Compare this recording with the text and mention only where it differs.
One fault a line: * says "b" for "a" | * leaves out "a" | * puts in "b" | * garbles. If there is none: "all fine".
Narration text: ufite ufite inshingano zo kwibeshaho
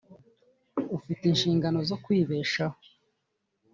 * leaves out "ufite"